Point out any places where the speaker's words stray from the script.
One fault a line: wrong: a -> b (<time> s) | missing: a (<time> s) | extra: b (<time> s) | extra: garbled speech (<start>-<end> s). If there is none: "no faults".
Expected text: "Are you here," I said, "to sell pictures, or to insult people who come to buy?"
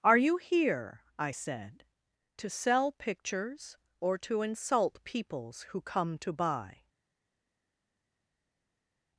wrong: people -> peoples (5.0 s)